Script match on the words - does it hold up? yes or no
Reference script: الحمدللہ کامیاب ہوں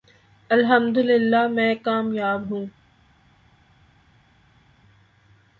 no